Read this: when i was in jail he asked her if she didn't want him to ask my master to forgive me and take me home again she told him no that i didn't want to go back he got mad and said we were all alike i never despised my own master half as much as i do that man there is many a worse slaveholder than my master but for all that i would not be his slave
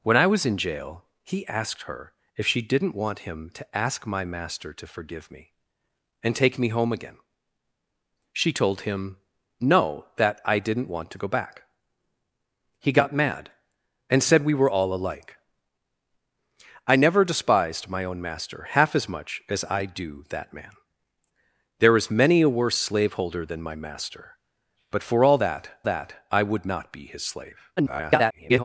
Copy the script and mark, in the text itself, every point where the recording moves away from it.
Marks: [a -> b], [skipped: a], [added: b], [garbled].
when i was in jail he asked her if she didn't want him to ask my master to forgive me and take me home again she told him no that i didn't want to go back he got mad and said we were all alike i never despised my own master half as much as i do that man there is many a worse slaveholder than my master but for all that [added: that] i would not be his slave [garbled]